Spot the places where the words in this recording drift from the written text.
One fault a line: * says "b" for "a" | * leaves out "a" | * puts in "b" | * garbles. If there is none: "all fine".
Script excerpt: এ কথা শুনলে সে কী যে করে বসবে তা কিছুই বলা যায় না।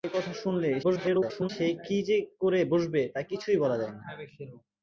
* garbles